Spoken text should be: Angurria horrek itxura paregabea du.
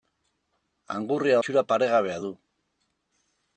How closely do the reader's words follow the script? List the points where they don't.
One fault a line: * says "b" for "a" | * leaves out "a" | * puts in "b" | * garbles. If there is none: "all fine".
* leaves out "horrek"